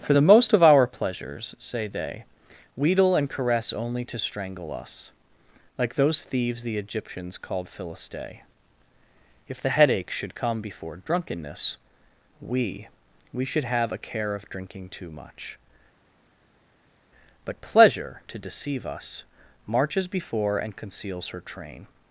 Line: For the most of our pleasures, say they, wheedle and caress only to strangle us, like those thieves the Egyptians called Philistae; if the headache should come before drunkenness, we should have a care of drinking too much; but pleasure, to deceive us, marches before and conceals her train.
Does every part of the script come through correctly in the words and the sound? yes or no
no